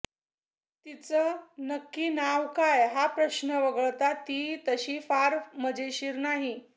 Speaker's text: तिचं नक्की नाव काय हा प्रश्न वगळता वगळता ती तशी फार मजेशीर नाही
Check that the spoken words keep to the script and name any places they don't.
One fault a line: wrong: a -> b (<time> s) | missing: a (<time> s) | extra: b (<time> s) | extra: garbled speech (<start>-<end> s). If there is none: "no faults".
missing: वगळता (4.1 s)